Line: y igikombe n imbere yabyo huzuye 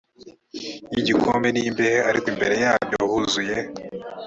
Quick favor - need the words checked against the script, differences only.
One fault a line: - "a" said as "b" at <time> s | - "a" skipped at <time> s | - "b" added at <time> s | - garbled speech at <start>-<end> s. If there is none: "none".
- "imbehe ariko" added at 1.7 s